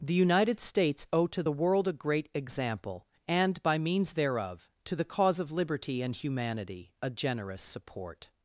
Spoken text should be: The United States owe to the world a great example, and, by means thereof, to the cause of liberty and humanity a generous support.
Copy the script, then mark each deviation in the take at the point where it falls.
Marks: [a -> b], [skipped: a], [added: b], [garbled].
The United States owe to the world a great example, and, by means thereof, to the cause of liberty and humanity a generous support.